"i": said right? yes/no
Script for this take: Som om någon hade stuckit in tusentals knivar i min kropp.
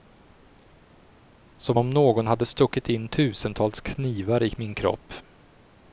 yes